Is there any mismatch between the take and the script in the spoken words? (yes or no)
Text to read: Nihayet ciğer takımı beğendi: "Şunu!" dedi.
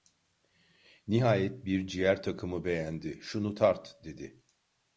yes